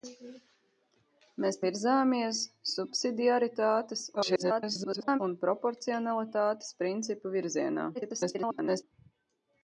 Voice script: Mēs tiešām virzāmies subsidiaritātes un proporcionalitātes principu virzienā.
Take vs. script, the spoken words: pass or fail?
fail